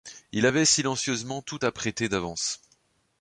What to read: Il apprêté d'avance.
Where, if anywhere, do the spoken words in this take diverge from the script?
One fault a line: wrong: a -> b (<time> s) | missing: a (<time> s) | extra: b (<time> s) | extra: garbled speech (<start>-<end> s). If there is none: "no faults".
extra: avait silencieusement tout (0.4 s)